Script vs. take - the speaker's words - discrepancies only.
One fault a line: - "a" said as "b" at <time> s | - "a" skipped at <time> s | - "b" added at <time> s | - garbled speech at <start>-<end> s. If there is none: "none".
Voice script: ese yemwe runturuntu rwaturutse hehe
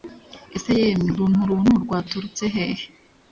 none